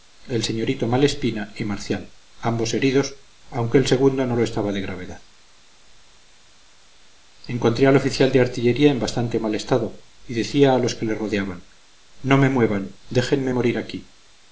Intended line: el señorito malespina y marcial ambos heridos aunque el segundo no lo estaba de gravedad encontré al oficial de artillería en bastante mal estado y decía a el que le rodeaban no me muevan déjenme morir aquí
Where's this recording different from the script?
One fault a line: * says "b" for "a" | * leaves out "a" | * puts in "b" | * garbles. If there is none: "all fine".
* says "los" for "el"